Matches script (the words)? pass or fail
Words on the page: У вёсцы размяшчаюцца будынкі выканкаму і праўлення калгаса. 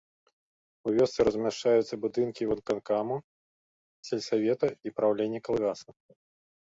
fail